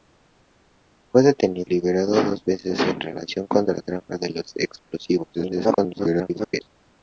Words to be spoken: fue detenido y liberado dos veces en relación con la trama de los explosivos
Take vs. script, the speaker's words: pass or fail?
fail